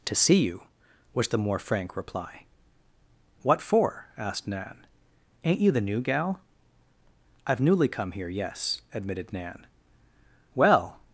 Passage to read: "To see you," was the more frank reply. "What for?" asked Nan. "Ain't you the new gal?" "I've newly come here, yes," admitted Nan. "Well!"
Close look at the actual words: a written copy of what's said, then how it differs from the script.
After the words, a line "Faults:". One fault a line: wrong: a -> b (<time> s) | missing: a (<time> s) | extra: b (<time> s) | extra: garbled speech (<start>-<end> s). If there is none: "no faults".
"To see you," was the more frank reply. "What for?" asked Nan. "Ain't you the new gal?" "I've newly come here, yes," admitted Nan. "Well!"
Faults:
no faults